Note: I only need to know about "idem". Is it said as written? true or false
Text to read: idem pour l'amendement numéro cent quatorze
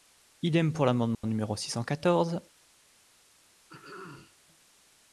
true